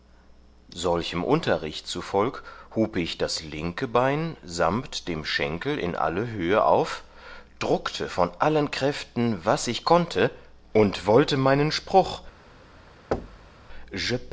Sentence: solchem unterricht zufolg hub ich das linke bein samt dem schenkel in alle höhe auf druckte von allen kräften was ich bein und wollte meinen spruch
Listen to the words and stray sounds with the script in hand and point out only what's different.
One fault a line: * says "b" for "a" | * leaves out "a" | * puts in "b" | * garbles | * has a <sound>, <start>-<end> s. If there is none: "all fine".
* says "konnte" for "bein"
* has a thud, 13.1-13.6 s